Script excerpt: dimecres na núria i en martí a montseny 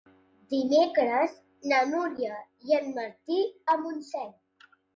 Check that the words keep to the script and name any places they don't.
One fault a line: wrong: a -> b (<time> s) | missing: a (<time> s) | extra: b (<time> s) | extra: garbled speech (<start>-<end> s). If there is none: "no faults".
no faults